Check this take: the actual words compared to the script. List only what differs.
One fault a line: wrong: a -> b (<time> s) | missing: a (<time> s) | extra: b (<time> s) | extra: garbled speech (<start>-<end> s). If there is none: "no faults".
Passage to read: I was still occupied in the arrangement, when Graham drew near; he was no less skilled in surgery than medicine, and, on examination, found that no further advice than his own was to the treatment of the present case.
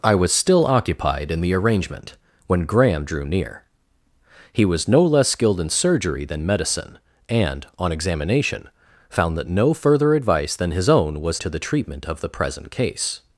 no faults